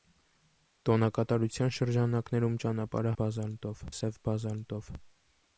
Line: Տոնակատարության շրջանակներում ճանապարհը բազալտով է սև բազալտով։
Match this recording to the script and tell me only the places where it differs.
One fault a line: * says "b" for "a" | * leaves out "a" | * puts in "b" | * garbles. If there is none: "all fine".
all fine